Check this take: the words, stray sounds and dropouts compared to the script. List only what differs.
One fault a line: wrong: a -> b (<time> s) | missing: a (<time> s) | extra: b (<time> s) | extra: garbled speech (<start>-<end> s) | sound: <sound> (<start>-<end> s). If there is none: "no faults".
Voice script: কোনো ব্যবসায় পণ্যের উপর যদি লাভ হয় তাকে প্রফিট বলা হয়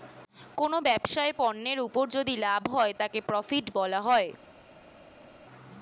no faults